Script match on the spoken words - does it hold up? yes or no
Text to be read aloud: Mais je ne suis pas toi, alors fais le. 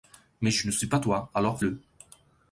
no